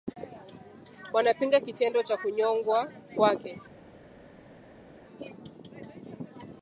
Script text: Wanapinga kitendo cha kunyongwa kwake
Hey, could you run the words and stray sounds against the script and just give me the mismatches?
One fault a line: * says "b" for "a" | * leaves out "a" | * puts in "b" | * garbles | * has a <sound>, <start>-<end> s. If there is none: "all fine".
all fine